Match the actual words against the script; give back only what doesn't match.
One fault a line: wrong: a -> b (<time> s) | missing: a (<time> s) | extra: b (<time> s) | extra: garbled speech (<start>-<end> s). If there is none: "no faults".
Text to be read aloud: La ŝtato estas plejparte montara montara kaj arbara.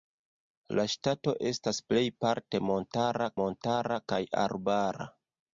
no faults